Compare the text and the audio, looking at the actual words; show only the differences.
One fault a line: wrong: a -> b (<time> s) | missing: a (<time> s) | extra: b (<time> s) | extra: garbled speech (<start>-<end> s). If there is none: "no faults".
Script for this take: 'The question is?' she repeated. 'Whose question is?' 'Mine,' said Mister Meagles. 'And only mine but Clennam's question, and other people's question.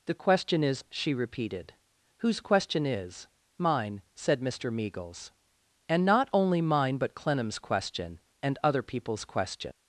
extra: not (6.0 s)